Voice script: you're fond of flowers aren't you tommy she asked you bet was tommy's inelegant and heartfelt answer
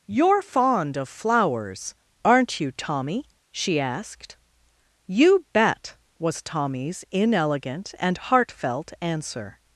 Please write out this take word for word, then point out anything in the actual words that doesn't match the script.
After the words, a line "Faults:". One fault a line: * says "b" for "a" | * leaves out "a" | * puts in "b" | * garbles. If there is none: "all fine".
you're fond of flowers aren't you tommy she asked you bet was tommy's inelegant and heartfelt answer
Faults:
all fine